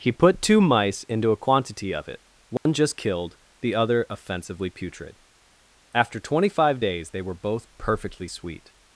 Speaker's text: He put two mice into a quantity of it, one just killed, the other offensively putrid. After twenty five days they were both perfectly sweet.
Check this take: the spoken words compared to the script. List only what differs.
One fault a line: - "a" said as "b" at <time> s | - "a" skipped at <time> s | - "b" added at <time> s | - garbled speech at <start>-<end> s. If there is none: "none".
none